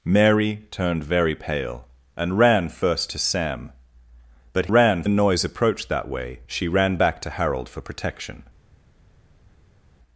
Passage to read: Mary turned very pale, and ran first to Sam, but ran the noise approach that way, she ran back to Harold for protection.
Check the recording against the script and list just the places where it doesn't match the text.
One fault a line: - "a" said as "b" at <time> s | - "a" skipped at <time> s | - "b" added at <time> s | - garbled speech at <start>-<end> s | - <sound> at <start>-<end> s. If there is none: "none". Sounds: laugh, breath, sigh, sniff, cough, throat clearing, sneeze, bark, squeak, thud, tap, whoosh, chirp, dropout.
none